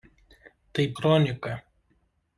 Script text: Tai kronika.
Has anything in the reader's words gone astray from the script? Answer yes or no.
no